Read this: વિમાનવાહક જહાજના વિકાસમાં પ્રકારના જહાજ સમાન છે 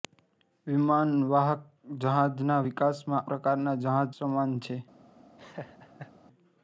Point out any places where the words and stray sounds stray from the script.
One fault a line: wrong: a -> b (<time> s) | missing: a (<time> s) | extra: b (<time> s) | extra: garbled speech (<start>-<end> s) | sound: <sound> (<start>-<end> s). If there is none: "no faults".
sound: laugh (5.4-6.1 s)